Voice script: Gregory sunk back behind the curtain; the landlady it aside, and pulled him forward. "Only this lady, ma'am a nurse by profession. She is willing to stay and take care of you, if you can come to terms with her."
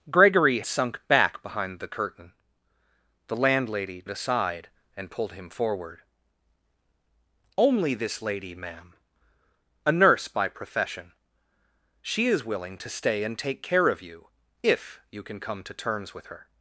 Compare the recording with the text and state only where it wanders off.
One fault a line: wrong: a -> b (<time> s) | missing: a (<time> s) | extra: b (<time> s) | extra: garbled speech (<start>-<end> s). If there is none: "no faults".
no faults